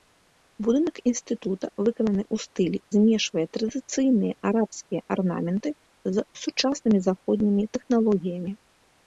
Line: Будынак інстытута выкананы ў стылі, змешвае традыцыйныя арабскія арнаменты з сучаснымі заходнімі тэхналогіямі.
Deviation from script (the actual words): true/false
false